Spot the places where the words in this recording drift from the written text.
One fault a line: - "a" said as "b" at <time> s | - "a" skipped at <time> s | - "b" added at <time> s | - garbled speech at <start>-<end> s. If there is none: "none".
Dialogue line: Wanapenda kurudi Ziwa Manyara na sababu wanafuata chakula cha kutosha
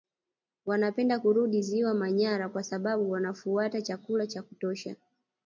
- "na" said as "kwa" at 2.5 s